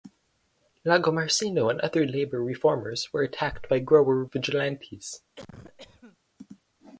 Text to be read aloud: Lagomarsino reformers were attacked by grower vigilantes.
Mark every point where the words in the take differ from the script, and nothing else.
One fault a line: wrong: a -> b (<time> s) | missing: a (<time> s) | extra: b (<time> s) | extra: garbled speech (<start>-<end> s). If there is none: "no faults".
extra: and other labor (1.7 s)